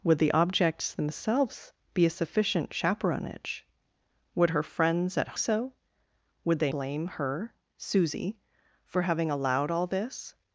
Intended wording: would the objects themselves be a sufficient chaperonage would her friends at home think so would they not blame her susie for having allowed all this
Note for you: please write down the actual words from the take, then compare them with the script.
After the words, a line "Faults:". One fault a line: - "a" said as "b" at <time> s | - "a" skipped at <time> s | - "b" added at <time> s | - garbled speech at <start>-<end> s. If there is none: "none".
would the objects themselves be a sufficient chaperonage would her friends at so would they blame her susie for having allowed all this
Faults:
- "home think" skipped at 5.4 s
- "not" skipped at 6.7 s